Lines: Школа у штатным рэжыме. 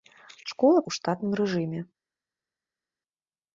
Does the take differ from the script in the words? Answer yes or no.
no